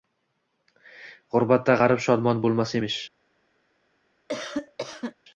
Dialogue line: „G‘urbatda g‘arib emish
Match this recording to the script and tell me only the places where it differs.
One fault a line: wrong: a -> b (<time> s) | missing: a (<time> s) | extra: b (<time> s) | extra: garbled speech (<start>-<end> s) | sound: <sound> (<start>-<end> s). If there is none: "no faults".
extra: shodmon bo‘lmas (2.1 s)
sound: cough (4.3-5.1 s)